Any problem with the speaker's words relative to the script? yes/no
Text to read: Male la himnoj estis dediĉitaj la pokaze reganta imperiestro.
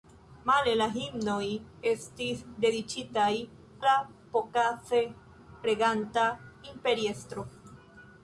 no